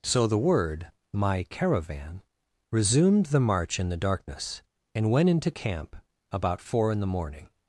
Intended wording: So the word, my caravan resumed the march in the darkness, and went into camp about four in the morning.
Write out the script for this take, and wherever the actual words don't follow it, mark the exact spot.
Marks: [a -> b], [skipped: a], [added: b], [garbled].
So the word, my caravan resumed the march in the darkness, and went into camp about four in the morning.